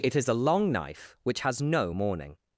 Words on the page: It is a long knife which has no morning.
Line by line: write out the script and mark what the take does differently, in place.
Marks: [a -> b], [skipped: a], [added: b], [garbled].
It is a long knife which has no morning.